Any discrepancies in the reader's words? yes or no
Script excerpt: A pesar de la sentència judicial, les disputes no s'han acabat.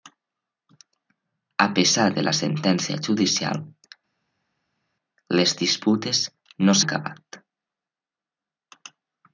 yes